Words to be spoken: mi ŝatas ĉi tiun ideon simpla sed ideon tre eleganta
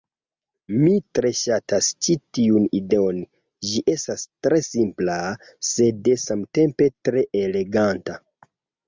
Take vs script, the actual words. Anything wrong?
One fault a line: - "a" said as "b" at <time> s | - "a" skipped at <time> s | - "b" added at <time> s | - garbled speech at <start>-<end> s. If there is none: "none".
- "tre" added at 1.2 s
- "ĝi estas tre" added at 3.7 s
- "ideon" said as "samtempe" at 6.3 s